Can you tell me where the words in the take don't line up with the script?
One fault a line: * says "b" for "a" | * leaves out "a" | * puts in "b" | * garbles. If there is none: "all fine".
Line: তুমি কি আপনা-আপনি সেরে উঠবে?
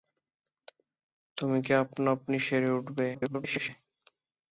* garbles